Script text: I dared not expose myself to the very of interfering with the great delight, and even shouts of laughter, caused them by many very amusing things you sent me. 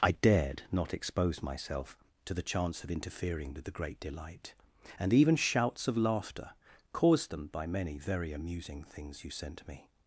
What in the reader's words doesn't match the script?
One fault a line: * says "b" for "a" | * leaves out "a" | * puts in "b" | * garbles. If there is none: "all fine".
* says "chance" for "very"